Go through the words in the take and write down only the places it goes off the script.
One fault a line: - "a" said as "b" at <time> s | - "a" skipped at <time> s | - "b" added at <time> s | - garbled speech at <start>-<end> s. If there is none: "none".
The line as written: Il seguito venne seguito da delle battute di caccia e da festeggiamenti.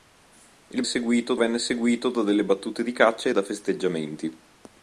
none